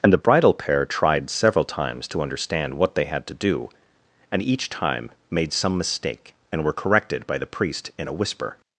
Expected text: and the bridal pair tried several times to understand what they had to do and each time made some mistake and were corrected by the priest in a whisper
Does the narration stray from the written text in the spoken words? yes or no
no